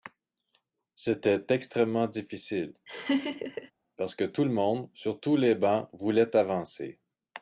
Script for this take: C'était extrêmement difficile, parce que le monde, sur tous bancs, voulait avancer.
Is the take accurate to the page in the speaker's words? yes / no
no